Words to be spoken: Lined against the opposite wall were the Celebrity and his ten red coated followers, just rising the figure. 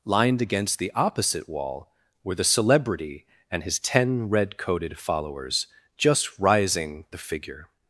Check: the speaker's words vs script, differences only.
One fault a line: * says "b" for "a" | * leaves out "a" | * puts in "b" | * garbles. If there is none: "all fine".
all fine